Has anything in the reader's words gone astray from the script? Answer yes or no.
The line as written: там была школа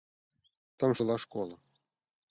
no